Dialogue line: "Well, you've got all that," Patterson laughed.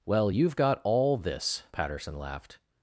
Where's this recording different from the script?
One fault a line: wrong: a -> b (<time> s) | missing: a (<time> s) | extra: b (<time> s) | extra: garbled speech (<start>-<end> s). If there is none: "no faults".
wrong: that -> this (1.2 s)